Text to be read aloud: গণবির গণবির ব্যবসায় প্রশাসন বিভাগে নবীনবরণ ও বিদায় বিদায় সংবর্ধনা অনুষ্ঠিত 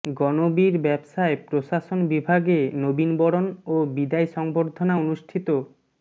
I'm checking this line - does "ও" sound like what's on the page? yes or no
yes